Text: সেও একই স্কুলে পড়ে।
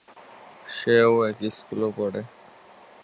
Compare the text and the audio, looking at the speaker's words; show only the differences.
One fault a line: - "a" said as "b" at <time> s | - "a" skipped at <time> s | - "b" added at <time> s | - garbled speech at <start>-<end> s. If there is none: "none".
none